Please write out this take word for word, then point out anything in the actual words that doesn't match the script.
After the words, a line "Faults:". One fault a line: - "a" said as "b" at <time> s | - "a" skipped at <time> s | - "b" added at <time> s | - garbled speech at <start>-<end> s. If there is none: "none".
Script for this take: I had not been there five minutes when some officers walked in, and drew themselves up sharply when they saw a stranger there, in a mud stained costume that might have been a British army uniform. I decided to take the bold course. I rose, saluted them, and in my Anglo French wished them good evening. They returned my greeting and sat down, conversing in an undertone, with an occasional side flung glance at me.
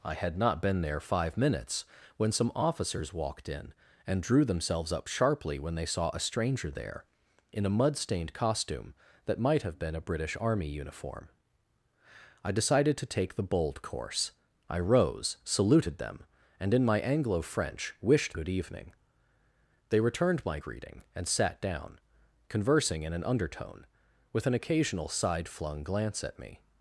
I had not been there five minutes when some officers walked in, and drew themselves up sharply when they saw a stranger there, in a mud stained costume that might have been a British army uniform. I decided to take the bold course. I rose, saluted them, and in my Anglo French wished good evening. They returned my greeting and sat down, conversing in an undertone, with an occasional side flung glance at me.
Faults:
- "them" skipped at 18.4 s